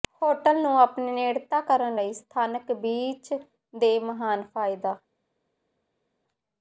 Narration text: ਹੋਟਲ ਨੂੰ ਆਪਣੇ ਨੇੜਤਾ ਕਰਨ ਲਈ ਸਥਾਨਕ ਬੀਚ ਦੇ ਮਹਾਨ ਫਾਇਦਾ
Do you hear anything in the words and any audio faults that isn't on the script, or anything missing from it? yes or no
no